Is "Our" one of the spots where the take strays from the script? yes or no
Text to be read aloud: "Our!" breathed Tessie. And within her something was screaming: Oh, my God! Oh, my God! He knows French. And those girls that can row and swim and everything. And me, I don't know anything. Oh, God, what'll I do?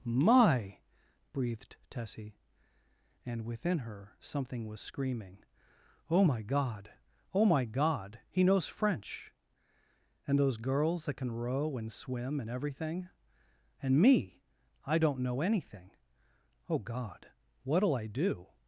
yes